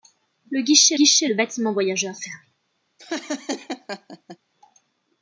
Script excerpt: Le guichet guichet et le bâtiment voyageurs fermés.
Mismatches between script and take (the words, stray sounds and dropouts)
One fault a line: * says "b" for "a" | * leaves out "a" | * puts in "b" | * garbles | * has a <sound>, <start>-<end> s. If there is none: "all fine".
* has a laugh, 3.0-4.4 s